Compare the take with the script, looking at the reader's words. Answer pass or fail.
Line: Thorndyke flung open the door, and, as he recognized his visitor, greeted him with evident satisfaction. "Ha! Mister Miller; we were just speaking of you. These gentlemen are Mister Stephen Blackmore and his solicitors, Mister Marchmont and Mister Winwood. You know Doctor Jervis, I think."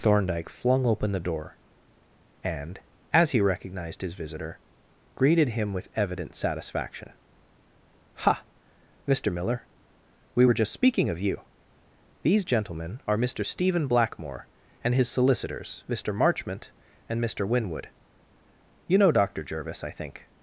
pass